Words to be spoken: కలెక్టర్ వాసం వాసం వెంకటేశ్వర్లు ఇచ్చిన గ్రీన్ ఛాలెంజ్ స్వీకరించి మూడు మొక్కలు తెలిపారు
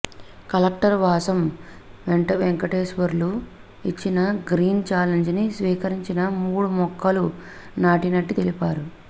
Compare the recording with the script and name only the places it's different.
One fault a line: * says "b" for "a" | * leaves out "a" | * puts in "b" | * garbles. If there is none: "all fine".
* leaves out "వాసం"
* puts in "ని"
* puts in "నాటినట్టు"